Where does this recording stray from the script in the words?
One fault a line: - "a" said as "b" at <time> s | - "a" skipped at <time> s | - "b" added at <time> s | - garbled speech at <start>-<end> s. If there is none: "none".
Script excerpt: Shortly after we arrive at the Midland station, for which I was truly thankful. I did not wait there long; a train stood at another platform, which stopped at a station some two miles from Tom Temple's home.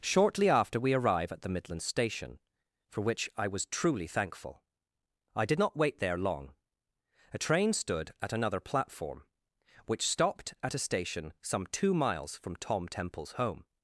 none